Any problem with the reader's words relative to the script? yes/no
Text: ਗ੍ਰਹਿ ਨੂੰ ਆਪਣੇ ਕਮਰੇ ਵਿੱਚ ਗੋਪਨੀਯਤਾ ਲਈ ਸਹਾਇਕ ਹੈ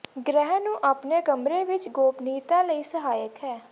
no